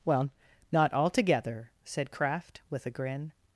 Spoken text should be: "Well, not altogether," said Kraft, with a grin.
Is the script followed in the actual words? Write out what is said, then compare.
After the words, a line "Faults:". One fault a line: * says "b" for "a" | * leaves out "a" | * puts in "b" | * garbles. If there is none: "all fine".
"Well, not altogether," said Kraft, with a grin.
Faults:
all fine